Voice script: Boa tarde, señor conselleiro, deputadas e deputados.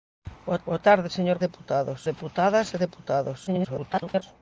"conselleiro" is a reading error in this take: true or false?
true